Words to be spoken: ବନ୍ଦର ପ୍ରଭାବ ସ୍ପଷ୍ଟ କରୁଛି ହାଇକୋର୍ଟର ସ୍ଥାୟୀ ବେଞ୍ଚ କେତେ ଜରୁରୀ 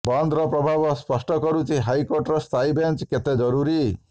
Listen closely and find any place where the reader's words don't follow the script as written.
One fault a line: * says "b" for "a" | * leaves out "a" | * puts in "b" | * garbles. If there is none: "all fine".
all fine